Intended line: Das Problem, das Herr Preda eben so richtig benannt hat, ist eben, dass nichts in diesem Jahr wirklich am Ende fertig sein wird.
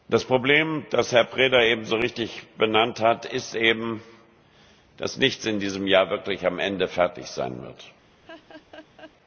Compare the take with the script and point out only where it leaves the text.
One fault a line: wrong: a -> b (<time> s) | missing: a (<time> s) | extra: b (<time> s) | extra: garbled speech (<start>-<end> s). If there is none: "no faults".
no faults